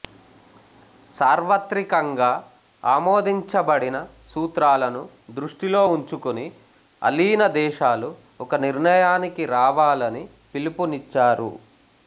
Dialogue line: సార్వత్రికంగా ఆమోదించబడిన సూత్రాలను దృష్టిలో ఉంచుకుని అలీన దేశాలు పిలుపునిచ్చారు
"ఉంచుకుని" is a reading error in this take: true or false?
false